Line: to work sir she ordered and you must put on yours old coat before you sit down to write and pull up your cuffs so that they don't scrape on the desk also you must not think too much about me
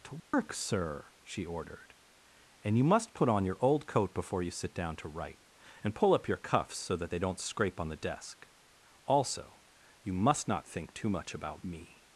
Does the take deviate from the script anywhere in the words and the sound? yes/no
yes